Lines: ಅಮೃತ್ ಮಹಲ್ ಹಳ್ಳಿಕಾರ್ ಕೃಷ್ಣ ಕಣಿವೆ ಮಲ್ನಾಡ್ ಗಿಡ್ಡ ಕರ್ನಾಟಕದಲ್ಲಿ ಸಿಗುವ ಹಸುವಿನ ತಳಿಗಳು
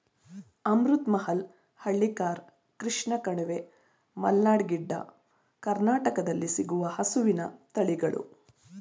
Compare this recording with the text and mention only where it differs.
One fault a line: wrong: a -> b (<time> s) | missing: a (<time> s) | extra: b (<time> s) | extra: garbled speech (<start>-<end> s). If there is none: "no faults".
no faults